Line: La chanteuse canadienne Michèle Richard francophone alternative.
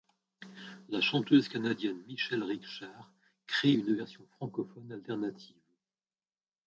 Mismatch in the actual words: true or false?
true